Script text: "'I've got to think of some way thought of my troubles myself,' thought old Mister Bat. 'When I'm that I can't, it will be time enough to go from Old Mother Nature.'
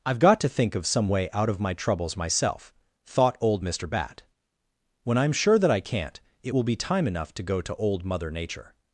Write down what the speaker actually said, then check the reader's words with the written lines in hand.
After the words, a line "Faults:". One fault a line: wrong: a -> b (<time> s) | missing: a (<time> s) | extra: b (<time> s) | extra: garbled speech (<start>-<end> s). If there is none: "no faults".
"'I've got to think of some way out of my troubles myself,' thought old Mister Bat. 'When I'm sure that I can't, it will be time enough to go to Old Mother Nature.'
Faults:
wrong: thought -> out (1.3 s)
extra: sure (5.3 s)
wrong: from -> to (7.6 s)